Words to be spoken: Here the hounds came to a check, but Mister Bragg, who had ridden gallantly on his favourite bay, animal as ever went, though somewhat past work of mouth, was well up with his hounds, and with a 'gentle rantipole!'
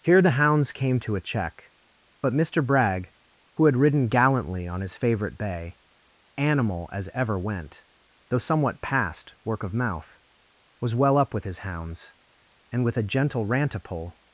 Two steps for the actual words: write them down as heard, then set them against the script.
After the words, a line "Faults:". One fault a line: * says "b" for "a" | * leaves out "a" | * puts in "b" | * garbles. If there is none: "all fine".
Here the hounds came to a check, but Mister Bragg, who had ridden gallantly on his favourite bay, animal as ever went, though somewhat past work of mouth, was well up with his hounds, and with a 'gentle rantipole!'
Faults:
all fine